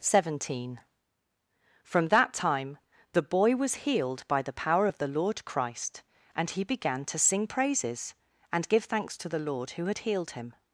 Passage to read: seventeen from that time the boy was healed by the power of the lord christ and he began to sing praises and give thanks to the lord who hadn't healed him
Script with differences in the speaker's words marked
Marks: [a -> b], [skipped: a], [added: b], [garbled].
seventeen from that time the boy was healed by the power of the lord christ and he began to sing praises and give thanks to the lord who [hadn't -> had] healed him